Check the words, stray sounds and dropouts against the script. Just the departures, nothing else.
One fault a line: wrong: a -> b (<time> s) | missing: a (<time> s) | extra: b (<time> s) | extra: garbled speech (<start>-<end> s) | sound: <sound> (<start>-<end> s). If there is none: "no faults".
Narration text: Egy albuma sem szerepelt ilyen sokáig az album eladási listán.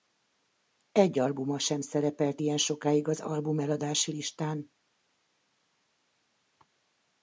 no faults